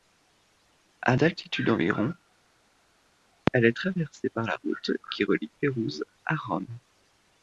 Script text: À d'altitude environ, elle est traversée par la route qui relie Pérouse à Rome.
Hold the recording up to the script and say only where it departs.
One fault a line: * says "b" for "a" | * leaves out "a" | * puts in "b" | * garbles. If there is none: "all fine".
all fine